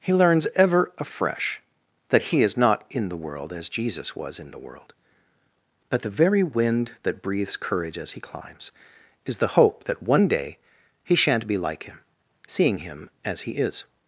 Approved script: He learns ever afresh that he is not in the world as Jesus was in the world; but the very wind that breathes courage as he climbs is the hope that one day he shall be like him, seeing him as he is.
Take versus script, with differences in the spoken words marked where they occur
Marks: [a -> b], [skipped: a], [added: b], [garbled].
He learns ever afresh that he is not in the world as Jesus was in the world; but the very wind that breathes courage as he climbs is the hope that one day he [shall -> shan't] be like him, seeing him as he is.